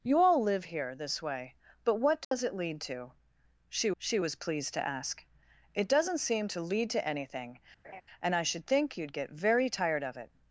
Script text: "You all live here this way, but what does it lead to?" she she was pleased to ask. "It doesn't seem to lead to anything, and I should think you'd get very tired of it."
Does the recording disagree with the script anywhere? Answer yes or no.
no